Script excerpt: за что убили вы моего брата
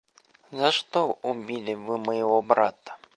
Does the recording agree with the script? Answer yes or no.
yes